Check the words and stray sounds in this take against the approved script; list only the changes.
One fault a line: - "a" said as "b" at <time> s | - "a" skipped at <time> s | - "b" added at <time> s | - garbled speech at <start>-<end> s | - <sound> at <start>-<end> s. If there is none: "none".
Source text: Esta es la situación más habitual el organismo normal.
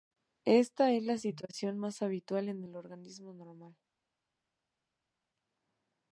- "en" added at 2.5 s